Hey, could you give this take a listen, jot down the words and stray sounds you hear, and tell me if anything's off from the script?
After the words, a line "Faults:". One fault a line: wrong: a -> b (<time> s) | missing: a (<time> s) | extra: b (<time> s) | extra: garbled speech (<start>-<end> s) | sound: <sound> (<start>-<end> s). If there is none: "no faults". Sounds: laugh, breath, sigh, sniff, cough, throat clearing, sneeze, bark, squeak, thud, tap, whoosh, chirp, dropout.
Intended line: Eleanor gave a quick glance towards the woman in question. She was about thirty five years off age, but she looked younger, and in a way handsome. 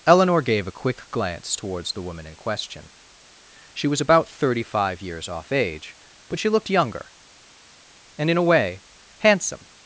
Eleanor gave a quick glance towards the woman in question. She was about thirty five years off age, but she looked younger, and in a way handsome.
Faults:
no faults